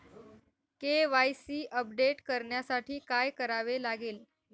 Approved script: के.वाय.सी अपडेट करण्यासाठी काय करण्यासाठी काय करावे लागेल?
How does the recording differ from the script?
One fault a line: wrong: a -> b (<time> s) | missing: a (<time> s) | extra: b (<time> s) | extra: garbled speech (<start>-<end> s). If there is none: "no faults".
missing: करण्यासाठी काय (3.3 s)